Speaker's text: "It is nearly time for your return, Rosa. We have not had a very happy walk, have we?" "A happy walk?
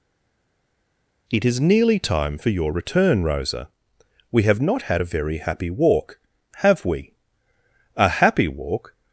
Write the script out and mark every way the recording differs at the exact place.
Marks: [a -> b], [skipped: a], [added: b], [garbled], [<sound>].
"It is nearly time for your return, Rosa. We have not had a very happy walk, have we?" "A happy walk?